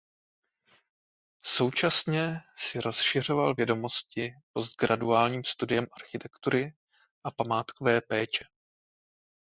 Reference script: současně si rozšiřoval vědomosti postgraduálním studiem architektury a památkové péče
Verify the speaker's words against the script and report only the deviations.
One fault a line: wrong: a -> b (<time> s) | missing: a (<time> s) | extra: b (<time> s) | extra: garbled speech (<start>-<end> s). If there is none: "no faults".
no faults